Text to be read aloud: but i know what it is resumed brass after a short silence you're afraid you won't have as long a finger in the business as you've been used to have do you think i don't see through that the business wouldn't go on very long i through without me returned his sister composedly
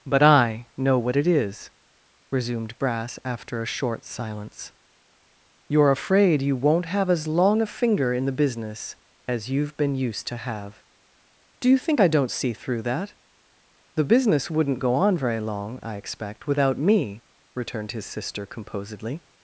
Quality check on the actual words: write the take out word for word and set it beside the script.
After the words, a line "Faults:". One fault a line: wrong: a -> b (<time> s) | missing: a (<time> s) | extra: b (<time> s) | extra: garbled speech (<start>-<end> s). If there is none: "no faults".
but i know what it is resumed brass after a short silence you're afraid you won't have as long a finger in the business as you've been used to have do you think i don't see through that the business wouldn't go on very long i expect without me returned his sister composedly
Faults:
wrong: through -> expect (15.9 s)